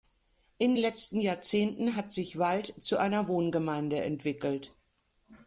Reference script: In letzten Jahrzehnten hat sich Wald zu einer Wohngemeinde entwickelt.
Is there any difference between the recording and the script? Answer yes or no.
no